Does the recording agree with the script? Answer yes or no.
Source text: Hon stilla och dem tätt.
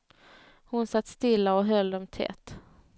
no